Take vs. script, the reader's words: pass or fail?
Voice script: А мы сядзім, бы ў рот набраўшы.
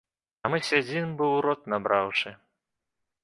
pass